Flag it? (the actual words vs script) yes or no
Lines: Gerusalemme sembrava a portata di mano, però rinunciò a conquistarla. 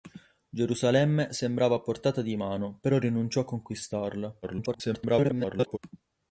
yes